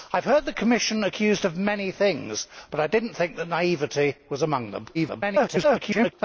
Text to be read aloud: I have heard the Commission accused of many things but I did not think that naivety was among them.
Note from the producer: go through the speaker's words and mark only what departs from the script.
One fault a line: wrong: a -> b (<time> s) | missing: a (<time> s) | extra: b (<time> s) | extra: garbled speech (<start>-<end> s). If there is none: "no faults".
extra: garbled speech (4.9-6.1 s)